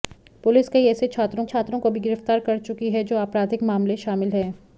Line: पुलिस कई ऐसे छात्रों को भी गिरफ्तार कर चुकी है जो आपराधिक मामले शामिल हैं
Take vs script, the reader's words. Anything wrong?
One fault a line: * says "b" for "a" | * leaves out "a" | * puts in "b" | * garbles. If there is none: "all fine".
* puts in "छात्रों"